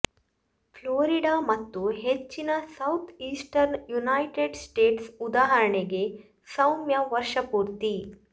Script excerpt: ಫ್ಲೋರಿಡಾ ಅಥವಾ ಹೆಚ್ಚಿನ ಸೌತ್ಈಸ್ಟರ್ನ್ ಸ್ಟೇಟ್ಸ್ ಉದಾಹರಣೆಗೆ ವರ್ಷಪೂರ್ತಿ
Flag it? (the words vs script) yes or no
yes